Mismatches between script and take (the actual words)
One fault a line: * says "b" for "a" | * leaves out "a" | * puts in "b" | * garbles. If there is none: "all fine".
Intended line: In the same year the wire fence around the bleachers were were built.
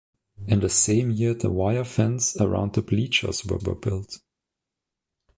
all fine